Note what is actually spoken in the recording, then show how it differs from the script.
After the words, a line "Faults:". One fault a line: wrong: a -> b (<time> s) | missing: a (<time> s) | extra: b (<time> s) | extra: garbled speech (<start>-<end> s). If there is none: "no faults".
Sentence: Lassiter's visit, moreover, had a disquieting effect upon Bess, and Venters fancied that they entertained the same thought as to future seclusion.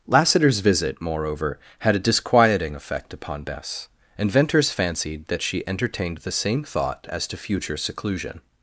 Lassiter's visit, moreover, had a disquieting effect upon Bess, and Venters fancied that she entertained the same thought as to future seclusion.
Faults:
wrong: they -> she (5.4 s)